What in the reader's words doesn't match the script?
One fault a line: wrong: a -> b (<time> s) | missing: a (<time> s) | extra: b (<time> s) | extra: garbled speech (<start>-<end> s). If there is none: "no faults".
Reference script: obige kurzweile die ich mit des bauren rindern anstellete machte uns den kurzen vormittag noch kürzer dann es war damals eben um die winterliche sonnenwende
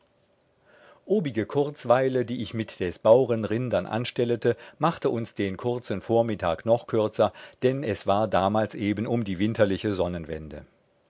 no faults